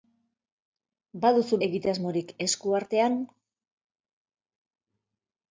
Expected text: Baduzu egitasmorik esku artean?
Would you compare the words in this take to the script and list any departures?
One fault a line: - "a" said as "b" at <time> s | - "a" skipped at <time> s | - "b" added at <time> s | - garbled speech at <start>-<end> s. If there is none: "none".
none